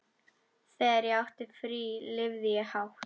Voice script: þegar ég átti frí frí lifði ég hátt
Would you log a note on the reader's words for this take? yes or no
yes